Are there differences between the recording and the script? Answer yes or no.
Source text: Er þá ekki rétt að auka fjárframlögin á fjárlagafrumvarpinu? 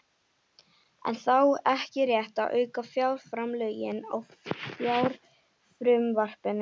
no